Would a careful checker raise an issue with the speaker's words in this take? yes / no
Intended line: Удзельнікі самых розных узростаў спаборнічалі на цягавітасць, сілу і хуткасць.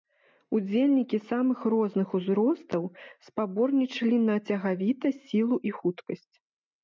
no